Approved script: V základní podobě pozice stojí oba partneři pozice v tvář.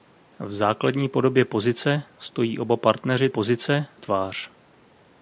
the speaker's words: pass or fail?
pass